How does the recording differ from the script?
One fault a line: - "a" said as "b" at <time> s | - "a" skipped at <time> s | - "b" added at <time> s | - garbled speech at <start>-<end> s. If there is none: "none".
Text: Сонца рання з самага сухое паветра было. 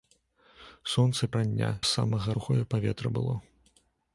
none